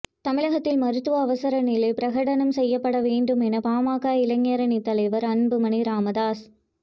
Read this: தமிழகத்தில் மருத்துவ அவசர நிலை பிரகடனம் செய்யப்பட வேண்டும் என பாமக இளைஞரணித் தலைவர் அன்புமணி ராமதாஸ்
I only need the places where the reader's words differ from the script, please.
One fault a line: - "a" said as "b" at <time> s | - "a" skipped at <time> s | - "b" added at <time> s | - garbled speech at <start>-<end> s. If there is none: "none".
none